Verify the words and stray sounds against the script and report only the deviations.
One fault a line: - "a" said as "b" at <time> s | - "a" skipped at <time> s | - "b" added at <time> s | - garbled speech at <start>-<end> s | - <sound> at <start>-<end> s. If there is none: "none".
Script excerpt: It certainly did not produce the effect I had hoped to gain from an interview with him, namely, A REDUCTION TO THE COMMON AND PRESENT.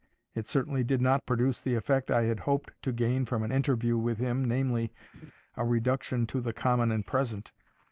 - laugh at 5.1-5.3 s